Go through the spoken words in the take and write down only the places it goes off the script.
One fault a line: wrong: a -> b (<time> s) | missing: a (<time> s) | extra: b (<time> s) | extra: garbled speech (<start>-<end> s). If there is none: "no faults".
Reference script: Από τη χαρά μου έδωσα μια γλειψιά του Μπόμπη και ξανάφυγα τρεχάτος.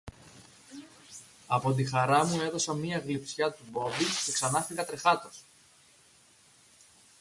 no faults